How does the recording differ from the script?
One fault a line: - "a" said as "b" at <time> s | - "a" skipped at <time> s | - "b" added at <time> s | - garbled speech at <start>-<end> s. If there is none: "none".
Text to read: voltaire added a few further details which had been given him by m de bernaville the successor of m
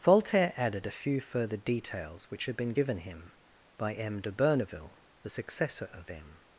none